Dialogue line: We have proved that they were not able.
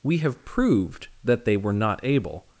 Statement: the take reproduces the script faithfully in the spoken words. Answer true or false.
true